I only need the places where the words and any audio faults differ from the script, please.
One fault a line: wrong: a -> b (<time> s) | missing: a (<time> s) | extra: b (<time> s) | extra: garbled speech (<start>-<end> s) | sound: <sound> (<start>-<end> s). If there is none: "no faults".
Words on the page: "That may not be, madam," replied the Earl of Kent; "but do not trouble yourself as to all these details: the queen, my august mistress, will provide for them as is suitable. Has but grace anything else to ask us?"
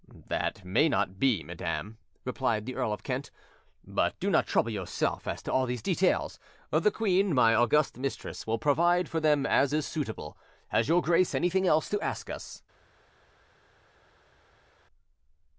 wrong: but -> your (10.9 s)